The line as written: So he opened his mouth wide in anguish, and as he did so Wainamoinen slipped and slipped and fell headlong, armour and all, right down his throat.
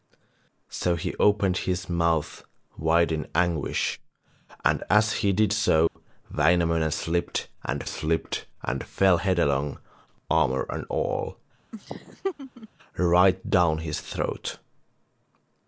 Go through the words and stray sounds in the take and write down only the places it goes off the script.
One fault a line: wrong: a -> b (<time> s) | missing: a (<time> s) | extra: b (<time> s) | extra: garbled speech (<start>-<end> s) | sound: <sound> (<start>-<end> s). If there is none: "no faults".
sound: dropout (5.9-6.0 s)
sound: laugh (11.7-12.7 s)